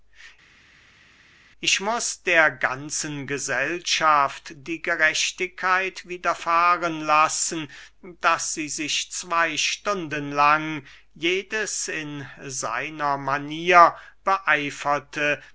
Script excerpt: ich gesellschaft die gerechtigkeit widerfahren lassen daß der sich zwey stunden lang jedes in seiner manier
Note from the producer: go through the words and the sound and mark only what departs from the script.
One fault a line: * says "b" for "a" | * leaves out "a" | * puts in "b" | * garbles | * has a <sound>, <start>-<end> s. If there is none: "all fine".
* puts in "muß der ganzen"
* says "sie" for "der"